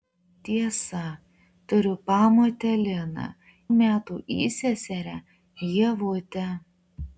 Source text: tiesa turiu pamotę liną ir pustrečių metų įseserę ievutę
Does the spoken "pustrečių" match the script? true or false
false